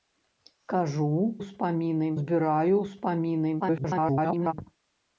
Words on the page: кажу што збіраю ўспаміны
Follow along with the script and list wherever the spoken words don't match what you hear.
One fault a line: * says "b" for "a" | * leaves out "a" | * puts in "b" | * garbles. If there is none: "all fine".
* says "ўспаміны" for "што"
* garbles